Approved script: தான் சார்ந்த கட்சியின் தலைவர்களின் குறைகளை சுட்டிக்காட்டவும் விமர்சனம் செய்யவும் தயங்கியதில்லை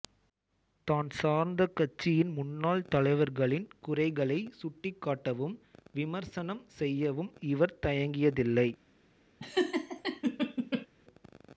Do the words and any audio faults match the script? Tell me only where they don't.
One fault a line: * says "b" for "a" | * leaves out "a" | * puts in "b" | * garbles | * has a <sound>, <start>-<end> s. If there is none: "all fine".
* puts in "முன்னாள்"
* puts in "இவர்"
* has a laugh, 9.4-10.9 s